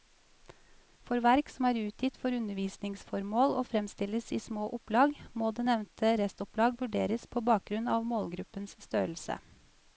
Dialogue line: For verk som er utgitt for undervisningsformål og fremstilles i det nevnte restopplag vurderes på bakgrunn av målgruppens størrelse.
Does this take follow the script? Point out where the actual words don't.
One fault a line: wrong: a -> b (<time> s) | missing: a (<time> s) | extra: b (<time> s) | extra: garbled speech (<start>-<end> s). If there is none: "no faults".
extra: små opplag må (4.5 s)